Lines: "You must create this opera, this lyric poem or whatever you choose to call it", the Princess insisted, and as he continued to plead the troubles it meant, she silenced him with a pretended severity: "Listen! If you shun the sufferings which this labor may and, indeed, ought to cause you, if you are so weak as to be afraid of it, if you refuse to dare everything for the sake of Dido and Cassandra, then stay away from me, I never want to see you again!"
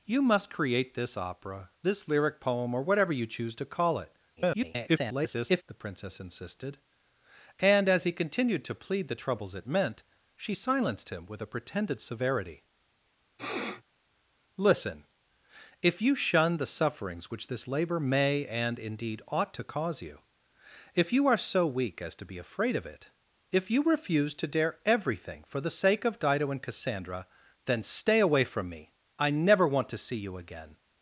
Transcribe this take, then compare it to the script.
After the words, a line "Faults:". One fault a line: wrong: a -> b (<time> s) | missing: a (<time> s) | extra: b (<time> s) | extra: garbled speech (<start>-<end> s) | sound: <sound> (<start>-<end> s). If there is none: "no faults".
"You must create this opera, this lyric poem or whatever you choose to call it", [garbled] the Princess insisted, and as he continued to plead the troubles it meant, she silenced him with a pretended severity: "Listen! If you shun the sufferings which this labor may and, indeed, ought to cause you, if you are so weak as to be afraid of it, if you refuse to dare everything for the sake of Dido and Cassandra, then stay away from me, I never want to see you again!"
Faults:
extra: garbled speech (4.4-5.6 s)
sound: sniff (13.4-13.8 s)